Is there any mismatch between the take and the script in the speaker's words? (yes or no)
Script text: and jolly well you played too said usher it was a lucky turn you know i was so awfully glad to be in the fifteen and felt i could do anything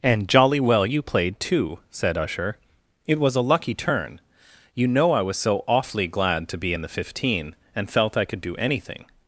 no